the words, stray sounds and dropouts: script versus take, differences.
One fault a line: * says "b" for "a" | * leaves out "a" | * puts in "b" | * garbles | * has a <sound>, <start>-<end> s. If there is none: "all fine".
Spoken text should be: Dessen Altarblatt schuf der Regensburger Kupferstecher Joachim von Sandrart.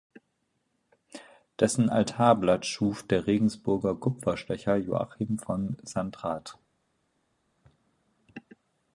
all fine